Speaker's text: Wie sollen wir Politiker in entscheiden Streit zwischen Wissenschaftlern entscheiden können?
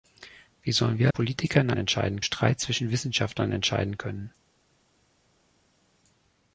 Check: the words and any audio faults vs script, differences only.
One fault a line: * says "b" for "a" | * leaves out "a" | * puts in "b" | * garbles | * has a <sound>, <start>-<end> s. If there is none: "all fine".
all fine